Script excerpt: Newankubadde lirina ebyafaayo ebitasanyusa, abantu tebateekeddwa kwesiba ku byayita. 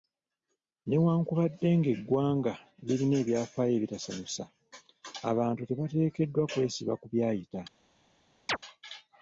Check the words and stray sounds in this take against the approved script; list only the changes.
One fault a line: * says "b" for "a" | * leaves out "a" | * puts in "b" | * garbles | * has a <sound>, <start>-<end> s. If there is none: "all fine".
* puts in "ng'eggwanga"
* has a chirp, 8.5-8.6 s